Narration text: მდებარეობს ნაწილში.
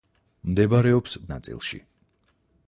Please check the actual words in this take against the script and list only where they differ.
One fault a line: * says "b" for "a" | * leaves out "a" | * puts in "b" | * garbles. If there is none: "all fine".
all fine